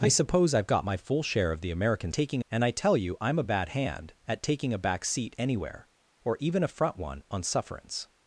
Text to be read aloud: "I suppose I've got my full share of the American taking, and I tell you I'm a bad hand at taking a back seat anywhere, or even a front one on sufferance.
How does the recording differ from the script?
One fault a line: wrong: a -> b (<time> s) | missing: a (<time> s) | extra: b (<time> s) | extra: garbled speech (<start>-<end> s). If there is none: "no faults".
no faults